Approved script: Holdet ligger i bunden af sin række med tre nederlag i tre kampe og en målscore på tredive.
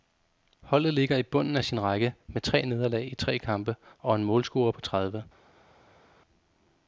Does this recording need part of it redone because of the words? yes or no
no